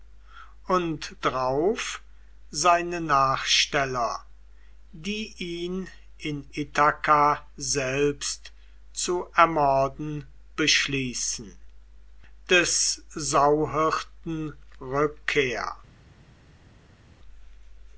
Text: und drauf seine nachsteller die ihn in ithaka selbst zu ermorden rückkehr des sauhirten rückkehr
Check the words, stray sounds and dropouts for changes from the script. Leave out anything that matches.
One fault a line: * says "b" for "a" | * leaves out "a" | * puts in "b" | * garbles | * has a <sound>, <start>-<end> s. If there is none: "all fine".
* says "beschließen" for "rückkehr"